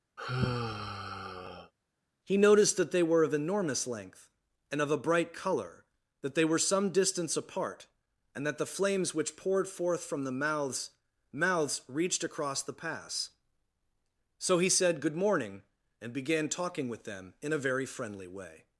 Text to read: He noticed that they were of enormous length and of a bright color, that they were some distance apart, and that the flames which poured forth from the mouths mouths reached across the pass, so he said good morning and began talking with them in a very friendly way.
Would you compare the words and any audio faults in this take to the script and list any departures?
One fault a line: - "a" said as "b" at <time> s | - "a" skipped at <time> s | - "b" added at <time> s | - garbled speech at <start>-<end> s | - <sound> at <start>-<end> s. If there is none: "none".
- sigh at 0.2-1.7 s